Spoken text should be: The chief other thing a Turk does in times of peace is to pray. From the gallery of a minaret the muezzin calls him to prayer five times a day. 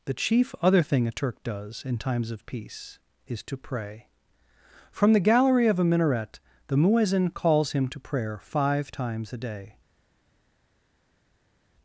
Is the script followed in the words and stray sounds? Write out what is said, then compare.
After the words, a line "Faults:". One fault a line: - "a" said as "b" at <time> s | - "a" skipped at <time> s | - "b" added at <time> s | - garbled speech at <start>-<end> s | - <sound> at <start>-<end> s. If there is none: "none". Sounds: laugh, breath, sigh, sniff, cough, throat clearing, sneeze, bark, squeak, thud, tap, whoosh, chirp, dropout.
The chief other thing a Turk does in times of peace is to pray. From the gallery of a minaret the muezzin calls him to prayer five times a day.
Faults:
none